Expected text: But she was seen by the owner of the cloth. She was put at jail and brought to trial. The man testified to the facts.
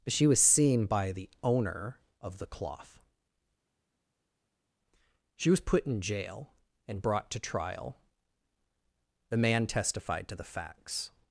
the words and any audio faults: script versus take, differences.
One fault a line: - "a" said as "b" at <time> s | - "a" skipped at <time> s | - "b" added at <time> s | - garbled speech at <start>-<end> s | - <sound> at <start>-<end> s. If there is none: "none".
- "at" said as "in" at 5.9 s